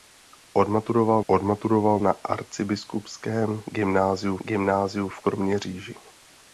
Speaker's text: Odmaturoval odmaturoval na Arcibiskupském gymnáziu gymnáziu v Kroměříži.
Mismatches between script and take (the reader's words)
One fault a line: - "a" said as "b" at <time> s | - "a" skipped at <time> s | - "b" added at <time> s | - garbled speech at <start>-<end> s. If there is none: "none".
none